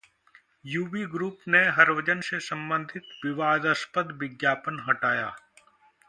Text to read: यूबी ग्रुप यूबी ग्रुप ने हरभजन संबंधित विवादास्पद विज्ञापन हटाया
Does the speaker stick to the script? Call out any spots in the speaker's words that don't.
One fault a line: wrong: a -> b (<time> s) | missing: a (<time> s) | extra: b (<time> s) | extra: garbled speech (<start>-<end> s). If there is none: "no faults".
missing: यूबी ग्रुप (1.4 s)
extra: से (2.2 s)